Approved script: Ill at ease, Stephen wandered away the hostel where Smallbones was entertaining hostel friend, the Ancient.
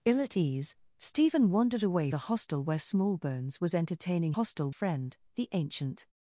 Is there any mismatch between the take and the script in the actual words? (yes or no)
no